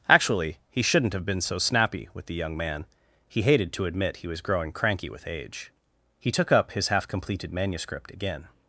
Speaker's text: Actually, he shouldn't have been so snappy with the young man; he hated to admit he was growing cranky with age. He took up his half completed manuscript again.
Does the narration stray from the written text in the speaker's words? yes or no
no